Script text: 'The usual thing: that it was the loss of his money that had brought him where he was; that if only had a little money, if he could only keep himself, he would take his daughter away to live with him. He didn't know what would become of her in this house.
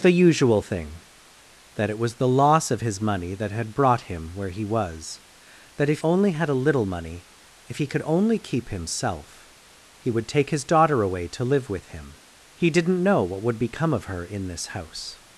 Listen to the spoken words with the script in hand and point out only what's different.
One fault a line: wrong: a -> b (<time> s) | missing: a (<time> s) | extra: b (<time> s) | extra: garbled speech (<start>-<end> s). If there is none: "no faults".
no faults